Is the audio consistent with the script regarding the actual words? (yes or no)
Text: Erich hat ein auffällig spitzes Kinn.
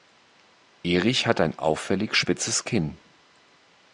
yes